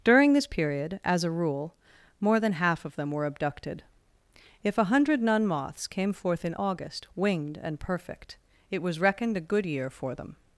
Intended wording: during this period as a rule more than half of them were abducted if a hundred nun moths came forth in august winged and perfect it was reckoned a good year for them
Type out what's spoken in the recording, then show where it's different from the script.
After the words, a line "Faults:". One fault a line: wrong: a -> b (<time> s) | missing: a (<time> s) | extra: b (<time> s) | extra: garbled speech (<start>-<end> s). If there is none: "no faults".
during this period as a rule more than half of them were abducted if a hundred nun moths came forth in august winged and perfect it was reckoned a good year for them
Faults:
no faults